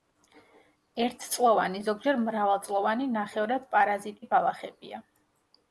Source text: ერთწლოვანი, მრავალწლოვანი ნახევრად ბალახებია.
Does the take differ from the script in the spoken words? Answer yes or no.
yes